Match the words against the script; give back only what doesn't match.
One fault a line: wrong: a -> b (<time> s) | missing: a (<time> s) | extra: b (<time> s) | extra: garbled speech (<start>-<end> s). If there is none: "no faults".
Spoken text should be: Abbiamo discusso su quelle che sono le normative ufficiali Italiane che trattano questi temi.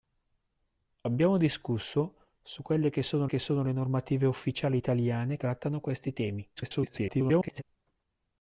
extra: che sono (3.2 s)
missing: che (5.4 s)
extra: garbled speech (6.6-7.6 s)